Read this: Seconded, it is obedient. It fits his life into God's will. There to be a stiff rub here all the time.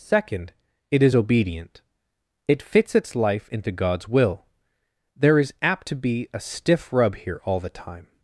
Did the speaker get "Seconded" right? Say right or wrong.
wrong